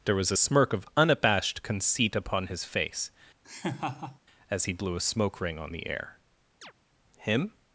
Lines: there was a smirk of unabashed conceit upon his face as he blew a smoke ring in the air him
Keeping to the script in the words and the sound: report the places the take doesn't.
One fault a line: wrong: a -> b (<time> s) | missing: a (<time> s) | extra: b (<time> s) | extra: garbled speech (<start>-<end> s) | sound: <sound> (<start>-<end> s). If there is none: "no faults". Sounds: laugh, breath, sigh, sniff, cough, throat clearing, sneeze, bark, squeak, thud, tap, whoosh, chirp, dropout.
sound: laugh (3.4-4.2 s)
wrong: in -> on (5.6 s)
sound: chirp (6.6-6.7 s)